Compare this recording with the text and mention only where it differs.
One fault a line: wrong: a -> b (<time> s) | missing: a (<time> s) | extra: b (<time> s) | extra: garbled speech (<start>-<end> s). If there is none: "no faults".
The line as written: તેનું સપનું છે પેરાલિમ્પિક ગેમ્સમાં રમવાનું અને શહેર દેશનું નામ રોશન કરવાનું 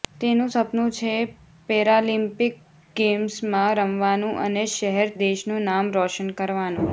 no faults